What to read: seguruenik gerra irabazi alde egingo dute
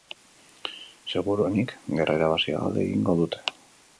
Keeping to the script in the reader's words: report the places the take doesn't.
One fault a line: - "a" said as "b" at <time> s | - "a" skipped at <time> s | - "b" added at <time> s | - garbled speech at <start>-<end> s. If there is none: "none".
none